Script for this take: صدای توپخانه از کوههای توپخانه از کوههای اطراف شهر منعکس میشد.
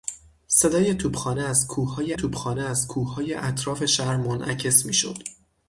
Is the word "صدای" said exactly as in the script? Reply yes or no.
yes